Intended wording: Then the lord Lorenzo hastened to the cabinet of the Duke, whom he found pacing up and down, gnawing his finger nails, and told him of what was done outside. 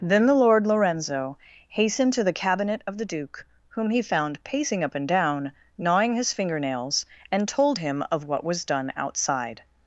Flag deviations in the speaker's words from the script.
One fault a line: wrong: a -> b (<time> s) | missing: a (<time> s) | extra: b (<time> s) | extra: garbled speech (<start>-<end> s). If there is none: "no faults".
no faults